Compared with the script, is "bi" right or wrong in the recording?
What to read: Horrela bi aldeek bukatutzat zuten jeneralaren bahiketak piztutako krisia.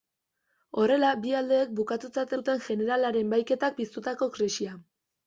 right